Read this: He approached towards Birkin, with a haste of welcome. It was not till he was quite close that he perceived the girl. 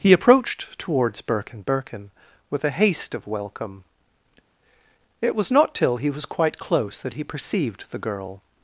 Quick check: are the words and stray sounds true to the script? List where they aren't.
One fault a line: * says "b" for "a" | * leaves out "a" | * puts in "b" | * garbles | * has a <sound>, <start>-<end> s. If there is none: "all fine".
* puts in "Birkin"